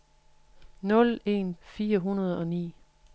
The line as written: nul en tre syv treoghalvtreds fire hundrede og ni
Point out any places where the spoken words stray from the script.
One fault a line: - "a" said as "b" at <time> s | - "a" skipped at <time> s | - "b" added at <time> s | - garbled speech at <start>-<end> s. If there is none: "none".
- "tre syv treoghalvtreds" skipped at 1.5 s